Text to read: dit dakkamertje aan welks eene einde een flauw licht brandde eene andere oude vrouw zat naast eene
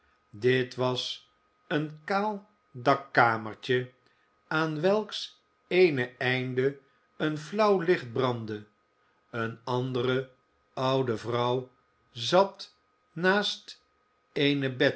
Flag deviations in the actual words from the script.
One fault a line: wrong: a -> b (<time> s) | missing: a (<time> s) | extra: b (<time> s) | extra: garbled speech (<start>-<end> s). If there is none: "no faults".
extra: was een kaal (0.8 s)